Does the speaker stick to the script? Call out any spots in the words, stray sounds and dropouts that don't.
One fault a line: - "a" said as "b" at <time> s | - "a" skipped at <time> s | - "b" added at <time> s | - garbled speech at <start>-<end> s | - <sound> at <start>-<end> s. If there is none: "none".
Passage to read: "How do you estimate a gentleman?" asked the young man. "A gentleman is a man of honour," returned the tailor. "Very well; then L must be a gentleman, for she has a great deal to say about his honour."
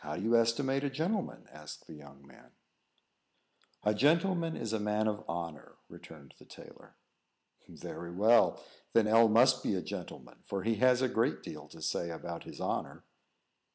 - "she" said as "he" at 10.6 s